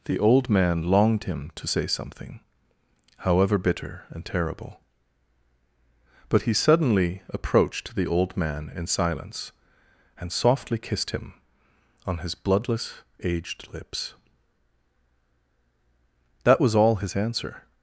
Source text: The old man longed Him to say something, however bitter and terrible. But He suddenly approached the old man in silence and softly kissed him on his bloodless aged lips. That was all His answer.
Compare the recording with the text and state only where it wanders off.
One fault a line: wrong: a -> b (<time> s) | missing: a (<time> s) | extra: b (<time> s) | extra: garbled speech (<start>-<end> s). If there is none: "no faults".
no faults